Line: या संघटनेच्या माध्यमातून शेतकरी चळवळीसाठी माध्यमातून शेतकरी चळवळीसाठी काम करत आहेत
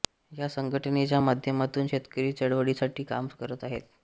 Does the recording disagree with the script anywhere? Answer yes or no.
yes